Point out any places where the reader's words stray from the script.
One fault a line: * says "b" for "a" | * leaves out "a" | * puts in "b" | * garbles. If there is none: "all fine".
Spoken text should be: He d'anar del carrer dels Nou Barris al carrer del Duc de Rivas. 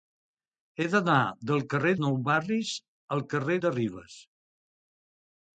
* leaves out "dels"
* leaves out "del Duc"